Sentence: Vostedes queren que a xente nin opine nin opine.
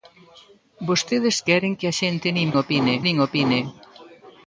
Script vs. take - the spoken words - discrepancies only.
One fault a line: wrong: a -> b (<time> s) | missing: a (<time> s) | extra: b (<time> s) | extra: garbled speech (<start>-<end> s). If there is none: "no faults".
no faults